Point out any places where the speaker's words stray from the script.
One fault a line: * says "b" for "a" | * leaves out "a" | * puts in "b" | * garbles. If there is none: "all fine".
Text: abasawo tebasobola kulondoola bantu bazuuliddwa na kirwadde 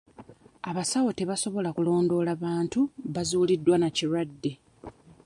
all fine